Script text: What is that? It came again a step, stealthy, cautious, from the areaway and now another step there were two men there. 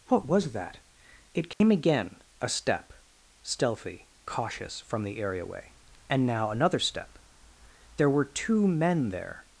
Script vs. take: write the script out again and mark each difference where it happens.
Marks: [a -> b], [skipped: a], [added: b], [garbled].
What [is -> was] that? It came again a step, stealthy, cautious, from the areaway and now another step there were two men there.